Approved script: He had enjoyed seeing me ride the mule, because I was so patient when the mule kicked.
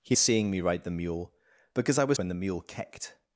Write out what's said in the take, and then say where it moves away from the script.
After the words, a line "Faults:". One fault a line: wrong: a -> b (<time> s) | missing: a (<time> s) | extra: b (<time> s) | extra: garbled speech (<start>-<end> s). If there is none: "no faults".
He seeing me ride the mule, because I was when the mule kicked.
Faults:
missing: had enjoyed (0.1 s)
missing: so patient (2.2 s)